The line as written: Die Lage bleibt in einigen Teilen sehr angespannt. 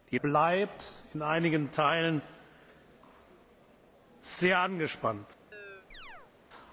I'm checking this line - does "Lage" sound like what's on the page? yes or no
no